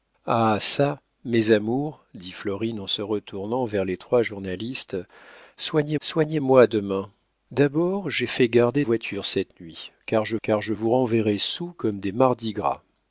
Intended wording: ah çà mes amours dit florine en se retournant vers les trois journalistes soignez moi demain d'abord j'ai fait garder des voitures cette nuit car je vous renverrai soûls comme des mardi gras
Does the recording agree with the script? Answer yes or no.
no